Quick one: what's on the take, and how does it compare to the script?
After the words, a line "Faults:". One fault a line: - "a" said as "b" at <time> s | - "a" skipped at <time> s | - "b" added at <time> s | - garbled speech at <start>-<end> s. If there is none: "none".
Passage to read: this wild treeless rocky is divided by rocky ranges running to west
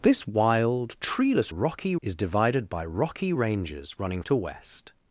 this wild treeless rocky is divided by rocky ranges running to west
Faults:
none